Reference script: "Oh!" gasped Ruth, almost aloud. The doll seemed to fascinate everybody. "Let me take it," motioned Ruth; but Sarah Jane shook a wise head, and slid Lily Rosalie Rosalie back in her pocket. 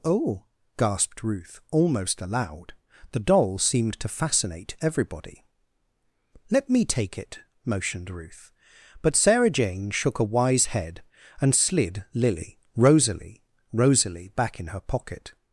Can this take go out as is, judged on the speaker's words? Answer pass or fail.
pass